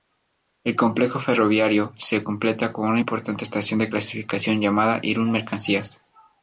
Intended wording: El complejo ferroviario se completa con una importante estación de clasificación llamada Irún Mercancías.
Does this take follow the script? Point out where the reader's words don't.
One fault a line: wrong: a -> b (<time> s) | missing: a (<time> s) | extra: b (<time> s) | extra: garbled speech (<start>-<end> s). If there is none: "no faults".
no faults